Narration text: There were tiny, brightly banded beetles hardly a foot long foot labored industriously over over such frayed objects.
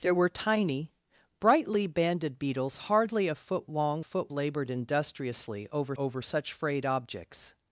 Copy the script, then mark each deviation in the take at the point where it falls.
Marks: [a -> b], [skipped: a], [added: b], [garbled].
There were tiny, brightly banded beetles hardly a foot long foot labored industriously over over such frayed objects.